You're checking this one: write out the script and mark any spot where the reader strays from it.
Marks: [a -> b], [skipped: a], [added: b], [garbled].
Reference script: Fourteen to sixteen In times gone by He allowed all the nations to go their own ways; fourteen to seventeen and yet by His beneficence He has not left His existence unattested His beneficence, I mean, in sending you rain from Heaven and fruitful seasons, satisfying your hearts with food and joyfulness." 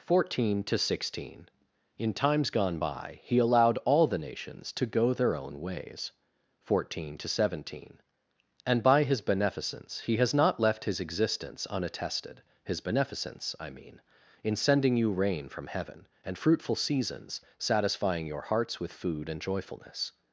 Fourteen to sixteen In times gone by He allowed all the nations to go their own ways; fourteen to seventeen and [skipped: yet] by His beneficence He has not left His existence unattested His beneficence, I mean, in sending you rain from Heaven and fruitful seasons, satisfying your hearts with food and joyfulness."